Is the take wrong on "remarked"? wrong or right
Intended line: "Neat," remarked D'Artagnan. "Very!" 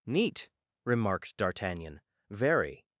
right